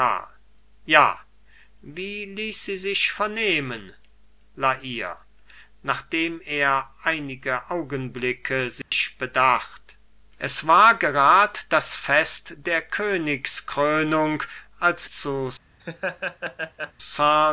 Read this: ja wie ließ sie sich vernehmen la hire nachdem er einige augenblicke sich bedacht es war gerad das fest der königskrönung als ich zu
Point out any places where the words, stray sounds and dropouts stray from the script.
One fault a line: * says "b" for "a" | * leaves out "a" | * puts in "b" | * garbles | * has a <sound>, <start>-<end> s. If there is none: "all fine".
* has a dropout, 8.8-8.9 s
* leaves out "ich"
* has a laugh, 15.8-16.9 s